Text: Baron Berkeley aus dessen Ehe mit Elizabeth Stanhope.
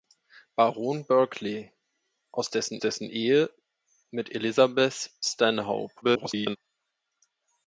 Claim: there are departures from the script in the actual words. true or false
true